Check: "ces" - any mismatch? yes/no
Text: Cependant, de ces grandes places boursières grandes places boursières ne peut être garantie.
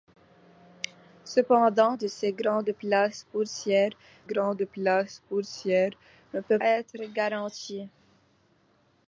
no